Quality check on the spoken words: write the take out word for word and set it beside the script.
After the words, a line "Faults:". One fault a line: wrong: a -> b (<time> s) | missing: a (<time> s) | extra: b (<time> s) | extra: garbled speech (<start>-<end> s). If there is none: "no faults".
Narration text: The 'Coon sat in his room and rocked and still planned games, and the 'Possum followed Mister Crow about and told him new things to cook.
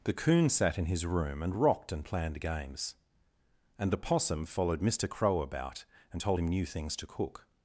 The 'Coon sat in his room and rocked and planned games, and the 'Possum followed Mister Crow about and told him new things to cook.
Faults:
missing: still (2.0 s)